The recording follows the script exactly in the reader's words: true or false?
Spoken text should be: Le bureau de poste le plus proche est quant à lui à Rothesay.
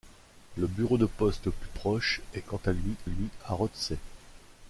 false